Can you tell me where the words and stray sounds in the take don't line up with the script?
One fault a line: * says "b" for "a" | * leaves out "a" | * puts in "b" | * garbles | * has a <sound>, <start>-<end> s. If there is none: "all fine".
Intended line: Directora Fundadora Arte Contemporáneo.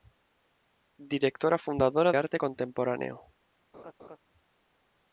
* has a laugh, 3.7-4.2 s